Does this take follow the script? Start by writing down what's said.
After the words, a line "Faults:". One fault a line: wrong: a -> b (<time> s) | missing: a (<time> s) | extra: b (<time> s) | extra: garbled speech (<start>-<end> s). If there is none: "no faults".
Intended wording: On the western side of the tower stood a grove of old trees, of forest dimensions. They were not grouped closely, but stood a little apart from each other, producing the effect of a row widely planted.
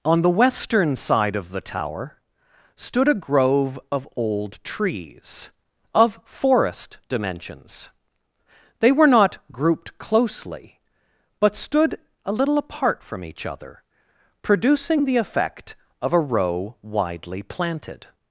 On the western side of the tower stood a grove of old trees, of forest dimensions. They were not grouped closely, but stood a little apart from each other, producing the effect of a row widely planted.
Faults:
no faults